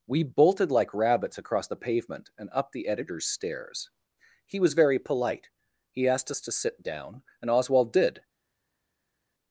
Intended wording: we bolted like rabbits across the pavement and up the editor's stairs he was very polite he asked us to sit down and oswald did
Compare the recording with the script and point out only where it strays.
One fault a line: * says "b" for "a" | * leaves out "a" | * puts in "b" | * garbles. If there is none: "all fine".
all fine